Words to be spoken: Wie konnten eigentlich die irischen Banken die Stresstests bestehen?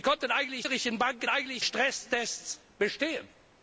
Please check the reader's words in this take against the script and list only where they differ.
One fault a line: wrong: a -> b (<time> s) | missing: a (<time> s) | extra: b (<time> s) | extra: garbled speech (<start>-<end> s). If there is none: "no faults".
missing: die (0.7 s)
wrong: die -> eigentlich (1.3 s)